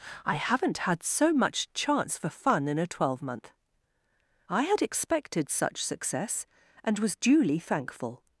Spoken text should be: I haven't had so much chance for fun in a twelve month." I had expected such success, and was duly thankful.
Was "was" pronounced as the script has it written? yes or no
yes